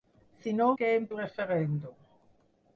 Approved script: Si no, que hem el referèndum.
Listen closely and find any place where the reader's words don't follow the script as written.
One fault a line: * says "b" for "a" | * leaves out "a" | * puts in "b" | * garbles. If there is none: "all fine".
all fine